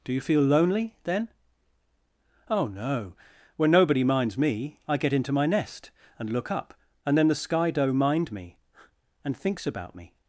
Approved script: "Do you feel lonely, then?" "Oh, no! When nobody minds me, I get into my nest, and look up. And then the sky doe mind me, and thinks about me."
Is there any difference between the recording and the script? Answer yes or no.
no